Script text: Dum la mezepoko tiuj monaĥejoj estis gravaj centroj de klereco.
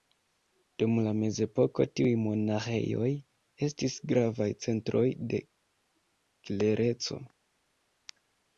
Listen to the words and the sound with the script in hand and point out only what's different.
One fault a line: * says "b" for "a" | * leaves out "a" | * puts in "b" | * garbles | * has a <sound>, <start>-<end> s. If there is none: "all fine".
all fine